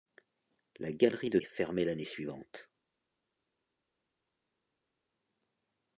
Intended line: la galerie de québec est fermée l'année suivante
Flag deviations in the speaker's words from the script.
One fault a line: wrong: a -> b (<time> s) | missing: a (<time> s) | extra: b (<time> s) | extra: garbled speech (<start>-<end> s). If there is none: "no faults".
missing: québec (1.4 s)